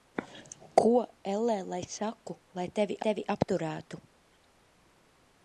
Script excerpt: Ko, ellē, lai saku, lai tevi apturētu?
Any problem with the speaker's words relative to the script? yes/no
yes